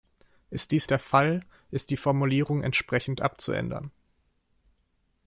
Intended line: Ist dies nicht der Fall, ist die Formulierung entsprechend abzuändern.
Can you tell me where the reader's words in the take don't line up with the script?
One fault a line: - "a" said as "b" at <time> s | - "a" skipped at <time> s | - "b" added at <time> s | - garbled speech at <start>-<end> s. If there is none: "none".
- "nicht" skipped at 0.9 s